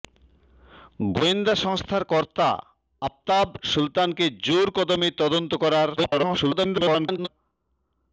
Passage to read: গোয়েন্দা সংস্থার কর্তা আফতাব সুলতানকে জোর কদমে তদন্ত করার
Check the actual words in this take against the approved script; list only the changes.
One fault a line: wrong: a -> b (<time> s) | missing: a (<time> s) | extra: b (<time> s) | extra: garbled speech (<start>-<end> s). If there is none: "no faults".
extra: garbled speech (6.0-7.3 s)